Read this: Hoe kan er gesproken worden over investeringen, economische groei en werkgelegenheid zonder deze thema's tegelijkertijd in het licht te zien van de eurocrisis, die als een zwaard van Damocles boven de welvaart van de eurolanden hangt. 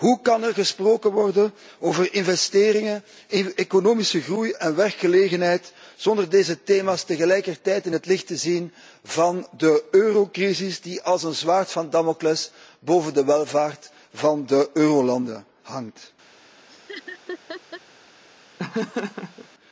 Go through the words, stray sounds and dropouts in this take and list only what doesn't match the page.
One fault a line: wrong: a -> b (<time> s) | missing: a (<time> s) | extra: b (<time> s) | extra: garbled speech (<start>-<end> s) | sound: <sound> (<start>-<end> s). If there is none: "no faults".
sound: laugh (16.7-17.8 s)
sound: laugh (18.6-19.5 s)